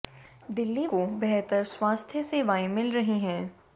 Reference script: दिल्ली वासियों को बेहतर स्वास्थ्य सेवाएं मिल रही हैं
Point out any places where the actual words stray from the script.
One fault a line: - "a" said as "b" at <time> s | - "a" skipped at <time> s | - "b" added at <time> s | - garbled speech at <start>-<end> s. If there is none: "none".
- "वासियों" skipped at 0.9 s